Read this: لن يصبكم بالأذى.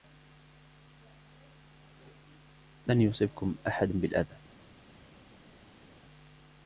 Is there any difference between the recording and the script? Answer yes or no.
yes